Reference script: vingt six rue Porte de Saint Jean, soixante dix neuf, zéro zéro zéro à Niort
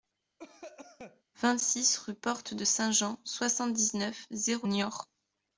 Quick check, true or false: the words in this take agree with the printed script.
false